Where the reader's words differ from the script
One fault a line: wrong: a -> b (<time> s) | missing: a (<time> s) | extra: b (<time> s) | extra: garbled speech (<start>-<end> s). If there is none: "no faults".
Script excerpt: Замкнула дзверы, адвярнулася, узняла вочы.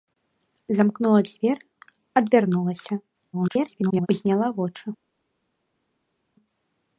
extra: garbled speech (3.3-4.1 s)